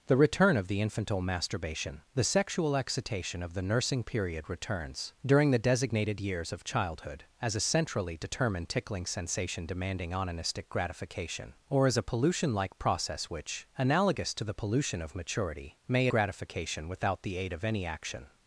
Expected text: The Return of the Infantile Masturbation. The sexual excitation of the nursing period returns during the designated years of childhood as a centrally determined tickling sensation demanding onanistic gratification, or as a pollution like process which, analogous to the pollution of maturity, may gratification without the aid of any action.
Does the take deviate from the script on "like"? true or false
false